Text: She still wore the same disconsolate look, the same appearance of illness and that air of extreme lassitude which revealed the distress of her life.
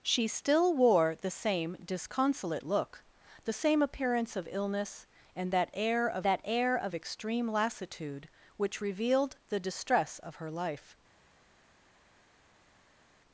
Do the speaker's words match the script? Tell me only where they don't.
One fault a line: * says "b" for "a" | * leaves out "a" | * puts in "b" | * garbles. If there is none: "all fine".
* puts in "that air of"